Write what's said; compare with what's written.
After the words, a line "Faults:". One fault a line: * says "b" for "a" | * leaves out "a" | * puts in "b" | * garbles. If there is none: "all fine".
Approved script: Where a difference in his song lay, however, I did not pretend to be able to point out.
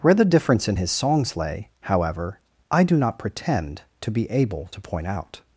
Where the difference in his songs lay, however, I do not pretend to be able to point out.
Faults:
* says "the" for "a"
* says "songs" for "song"
* says "do" for "did"